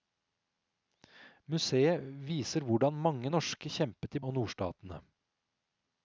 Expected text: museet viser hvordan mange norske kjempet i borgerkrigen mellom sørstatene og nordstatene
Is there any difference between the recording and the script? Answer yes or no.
yes